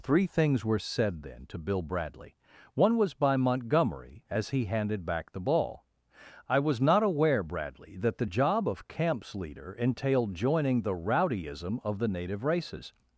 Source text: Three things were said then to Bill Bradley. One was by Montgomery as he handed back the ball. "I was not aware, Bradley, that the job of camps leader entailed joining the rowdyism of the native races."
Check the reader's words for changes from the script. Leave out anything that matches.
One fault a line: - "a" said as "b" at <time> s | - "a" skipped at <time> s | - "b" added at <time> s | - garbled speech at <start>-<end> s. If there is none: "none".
none